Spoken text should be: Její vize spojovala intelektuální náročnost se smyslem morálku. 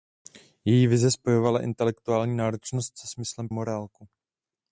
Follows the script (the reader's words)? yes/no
yes